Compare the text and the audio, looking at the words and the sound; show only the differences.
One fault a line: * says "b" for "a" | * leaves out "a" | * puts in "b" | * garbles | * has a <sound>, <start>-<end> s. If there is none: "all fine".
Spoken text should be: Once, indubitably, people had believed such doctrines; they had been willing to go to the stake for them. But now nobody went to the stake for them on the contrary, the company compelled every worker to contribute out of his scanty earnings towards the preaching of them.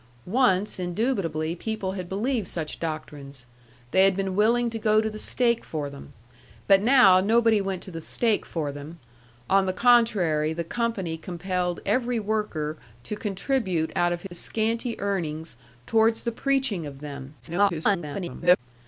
* has a dropout, 14.3-14.3 s
* garbles